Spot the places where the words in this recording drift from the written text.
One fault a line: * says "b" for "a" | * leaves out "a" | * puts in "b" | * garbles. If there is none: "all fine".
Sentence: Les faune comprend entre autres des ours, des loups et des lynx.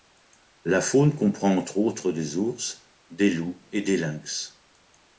* says "La" for "Les"